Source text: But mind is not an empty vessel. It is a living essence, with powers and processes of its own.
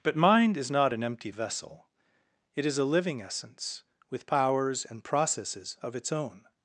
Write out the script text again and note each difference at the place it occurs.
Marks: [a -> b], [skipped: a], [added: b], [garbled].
But mind is not an empty vessel. It is a living essence, with powers and processes of its own.